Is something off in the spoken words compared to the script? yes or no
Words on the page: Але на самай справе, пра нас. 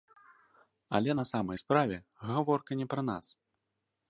yes